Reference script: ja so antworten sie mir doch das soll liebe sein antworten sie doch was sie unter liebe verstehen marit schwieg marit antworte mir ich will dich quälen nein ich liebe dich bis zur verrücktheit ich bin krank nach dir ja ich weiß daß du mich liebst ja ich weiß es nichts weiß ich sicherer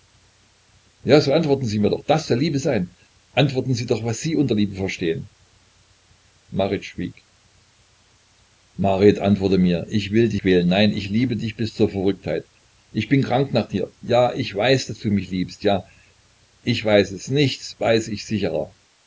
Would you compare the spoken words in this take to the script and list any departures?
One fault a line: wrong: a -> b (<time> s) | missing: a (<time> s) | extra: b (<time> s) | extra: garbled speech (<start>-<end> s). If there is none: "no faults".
no faults